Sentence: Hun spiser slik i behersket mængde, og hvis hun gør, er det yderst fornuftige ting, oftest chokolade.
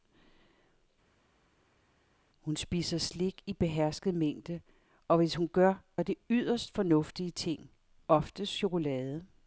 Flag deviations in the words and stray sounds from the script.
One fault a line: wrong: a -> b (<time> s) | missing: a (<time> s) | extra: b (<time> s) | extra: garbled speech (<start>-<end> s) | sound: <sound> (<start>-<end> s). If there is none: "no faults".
no faults